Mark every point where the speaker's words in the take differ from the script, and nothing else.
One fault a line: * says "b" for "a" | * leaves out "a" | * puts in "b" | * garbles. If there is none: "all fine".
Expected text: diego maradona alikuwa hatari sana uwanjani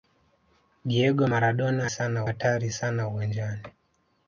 * says "sana" for "alikuwa"